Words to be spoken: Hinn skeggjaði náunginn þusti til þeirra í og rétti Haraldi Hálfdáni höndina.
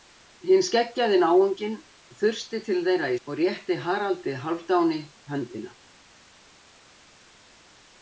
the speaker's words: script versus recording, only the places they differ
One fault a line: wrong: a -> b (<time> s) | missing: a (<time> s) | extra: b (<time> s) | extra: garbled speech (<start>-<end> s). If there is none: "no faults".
no faults